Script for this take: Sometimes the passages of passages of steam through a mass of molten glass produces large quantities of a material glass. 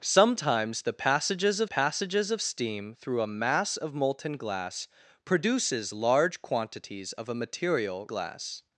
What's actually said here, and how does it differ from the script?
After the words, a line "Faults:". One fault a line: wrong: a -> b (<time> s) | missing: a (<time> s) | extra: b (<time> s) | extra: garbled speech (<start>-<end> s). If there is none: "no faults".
Sometimes the passages of passages of steam through a mass of molten glass produces large quantities of a material glass.
Faults:
no faults